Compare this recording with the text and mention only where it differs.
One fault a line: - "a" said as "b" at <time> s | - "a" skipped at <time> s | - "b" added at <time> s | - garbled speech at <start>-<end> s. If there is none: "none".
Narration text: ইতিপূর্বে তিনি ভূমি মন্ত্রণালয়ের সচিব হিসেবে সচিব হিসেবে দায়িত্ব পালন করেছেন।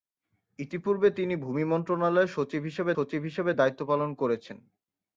none